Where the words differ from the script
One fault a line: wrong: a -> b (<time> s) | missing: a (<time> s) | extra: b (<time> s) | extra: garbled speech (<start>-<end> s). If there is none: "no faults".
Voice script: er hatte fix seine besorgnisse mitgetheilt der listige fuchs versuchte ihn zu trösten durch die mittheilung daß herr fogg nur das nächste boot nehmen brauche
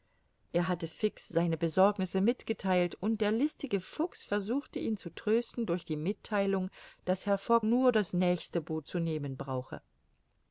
extra: und (3.0 s)
extra: zu (8.8 s)